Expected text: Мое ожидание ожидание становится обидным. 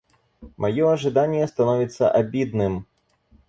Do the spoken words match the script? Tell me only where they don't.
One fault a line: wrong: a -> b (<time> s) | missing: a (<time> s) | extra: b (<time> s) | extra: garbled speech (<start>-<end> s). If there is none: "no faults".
missing: ожидание (1.5 s)